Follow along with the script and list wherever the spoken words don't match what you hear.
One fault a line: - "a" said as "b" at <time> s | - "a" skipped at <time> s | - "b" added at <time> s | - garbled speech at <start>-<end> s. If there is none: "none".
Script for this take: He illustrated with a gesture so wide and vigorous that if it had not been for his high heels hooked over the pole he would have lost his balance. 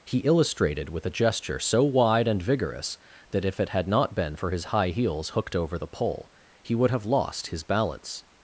none